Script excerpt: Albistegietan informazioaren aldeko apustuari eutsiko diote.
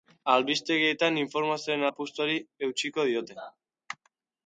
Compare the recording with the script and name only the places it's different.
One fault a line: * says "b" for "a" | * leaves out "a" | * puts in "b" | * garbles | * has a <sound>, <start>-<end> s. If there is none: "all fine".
* leaves out "aldeko"